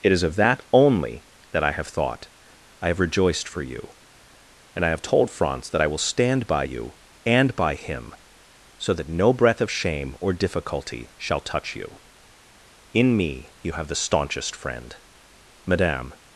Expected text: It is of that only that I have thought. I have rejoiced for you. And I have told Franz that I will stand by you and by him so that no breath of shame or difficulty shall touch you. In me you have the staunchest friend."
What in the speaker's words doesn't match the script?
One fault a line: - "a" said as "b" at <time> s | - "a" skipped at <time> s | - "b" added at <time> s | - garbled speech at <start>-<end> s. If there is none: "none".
- "Madame" added at 15.6 s